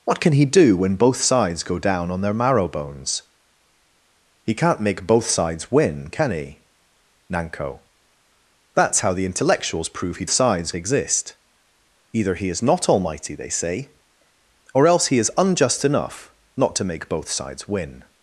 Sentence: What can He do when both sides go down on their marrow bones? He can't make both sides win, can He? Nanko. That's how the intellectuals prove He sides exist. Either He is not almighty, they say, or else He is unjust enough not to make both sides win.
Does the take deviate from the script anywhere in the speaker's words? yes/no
no